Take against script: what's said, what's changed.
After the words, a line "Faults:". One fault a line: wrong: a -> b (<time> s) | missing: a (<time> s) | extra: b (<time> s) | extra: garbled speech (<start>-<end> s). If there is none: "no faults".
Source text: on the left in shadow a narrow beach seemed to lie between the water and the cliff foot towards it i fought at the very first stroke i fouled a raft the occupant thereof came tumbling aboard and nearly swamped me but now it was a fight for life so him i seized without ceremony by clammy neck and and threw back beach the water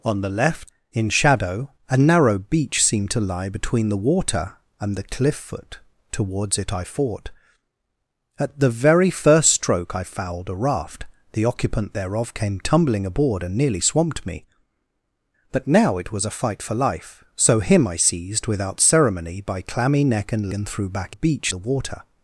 on the left in shadow a narrow beach seemed to lie between the water and the cliff foot towards it i fought at the very first stroke i fouled a raft the occupant thereof came tumbling aboard and nearly swamped me but now it was a fight for life so him i seized without ceremony by clammy neck and and threw back beach the water
Faults:
no faults